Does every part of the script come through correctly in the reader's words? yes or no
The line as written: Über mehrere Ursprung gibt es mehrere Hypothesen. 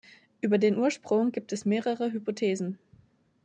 no